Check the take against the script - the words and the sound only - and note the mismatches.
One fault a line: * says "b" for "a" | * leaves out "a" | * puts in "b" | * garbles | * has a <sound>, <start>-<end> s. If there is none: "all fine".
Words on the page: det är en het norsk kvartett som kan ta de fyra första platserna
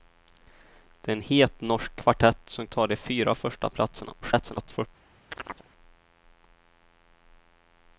* leaves out "kan"
* garbles
* has a chirp, 5.3-5.7 s